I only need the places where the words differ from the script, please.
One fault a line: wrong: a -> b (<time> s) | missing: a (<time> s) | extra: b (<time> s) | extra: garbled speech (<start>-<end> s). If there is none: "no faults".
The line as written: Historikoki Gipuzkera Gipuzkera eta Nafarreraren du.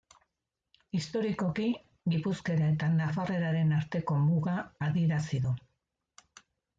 missing: Gipuzkera (2.7 s)
extra: arteko muga adierazi (3.8 s)